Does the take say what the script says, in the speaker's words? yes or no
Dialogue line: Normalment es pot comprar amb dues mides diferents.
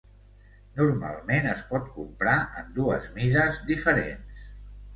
no